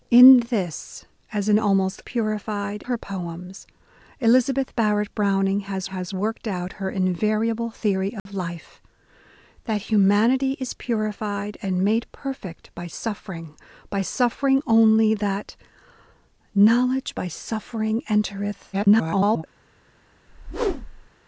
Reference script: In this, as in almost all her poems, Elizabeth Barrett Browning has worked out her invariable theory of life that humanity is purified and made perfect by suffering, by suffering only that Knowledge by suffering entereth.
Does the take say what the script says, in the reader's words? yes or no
no